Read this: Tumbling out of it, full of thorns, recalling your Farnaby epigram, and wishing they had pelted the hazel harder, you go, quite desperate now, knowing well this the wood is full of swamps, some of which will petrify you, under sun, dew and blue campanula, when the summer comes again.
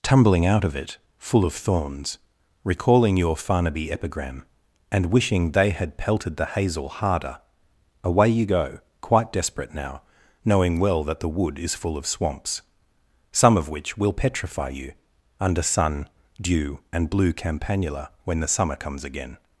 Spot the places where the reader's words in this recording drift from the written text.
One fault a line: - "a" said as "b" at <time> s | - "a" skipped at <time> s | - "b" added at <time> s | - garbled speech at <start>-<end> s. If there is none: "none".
- "away" added at 8.0 s
- "this" said as "that" at 11.0 s